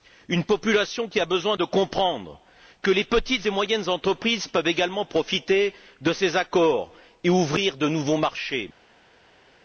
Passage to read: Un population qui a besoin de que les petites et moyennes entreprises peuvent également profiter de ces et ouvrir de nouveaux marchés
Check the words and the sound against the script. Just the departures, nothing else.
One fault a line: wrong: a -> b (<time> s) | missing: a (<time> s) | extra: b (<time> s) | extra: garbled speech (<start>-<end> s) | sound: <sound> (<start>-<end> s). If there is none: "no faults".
wrong: Un -> Une (0.3 s)
extra: comprendre (1.6 s)
extra: accords (6.4 s)